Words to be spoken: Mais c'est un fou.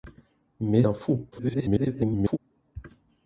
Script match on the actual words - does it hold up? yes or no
no